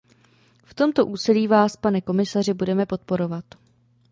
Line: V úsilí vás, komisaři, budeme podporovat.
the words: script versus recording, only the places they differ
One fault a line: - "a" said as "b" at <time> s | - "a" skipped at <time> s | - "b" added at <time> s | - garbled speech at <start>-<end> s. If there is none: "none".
- "tomto" added at 0.7 s
- "pane" added at 1.8 s